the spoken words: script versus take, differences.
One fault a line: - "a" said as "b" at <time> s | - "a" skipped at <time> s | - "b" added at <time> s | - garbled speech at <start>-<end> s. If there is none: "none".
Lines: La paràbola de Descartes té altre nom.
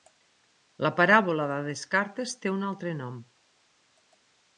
- "un" added at 2.5 s